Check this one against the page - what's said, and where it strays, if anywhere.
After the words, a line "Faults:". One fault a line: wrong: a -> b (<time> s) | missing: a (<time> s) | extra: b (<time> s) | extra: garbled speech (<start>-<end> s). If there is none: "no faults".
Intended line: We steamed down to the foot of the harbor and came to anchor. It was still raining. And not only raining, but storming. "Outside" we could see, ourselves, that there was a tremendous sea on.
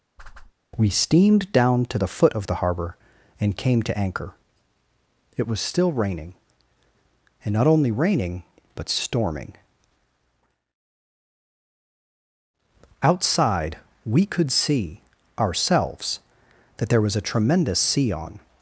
We steamed down to the foot of the harbor and came to anchor. It was still raining. And not only raining, but storming. "Outside" we could see, ourselves, that there was a tremendous sea on.
Faults:
no faults